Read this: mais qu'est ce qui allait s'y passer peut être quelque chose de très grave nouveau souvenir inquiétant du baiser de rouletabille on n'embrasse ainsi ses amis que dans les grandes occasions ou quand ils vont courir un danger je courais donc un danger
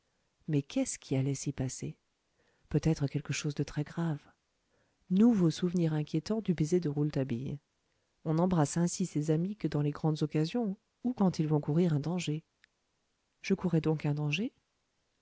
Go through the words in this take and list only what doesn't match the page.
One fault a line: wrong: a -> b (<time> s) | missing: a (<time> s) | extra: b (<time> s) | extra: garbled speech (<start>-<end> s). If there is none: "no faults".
no faults